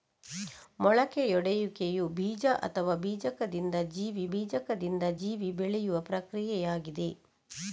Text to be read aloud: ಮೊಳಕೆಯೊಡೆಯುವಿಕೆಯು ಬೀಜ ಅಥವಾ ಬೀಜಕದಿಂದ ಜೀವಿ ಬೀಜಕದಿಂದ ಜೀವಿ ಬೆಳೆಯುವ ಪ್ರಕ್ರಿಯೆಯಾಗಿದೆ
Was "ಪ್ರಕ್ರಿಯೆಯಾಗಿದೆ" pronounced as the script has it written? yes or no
yes